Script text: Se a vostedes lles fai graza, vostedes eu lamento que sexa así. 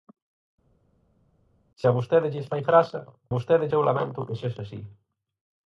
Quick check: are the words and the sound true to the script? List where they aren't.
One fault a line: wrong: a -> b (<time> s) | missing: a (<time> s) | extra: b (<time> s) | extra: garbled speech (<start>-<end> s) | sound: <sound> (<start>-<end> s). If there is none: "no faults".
no faults